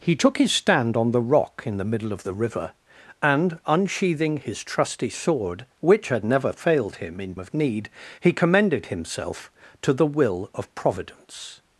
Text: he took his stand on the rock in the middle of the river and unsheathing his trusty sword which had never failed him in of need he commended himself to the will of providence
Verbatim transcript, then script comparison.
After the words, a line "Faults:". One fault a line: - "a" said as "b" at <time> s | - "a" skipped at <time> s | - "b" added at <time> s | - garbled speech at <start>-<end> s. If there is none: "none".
he took his stand on the rock in the middle of the river and unsheathing his trusty sword which had never failed him in of need he commended himself to the will of providence
Faults:
none